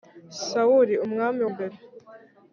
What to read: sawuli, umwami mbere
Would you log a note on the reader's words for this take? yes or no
no